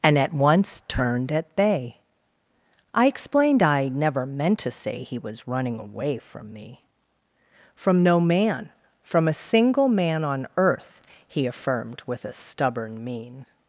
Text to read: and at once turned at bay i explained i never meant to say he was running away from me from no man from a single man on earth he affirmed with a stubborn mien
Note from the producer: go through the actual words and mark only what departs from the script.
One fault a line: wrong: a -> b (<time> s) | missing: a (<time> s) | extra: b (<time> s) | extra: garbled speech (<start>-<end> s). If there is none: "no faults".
no faults